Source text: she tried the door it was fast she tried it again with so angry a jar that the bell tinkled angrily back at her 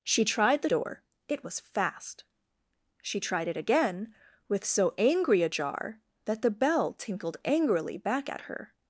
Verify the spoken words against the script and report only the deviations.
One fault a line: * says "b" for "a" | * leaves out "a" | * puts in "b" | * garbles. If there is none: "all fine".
all fine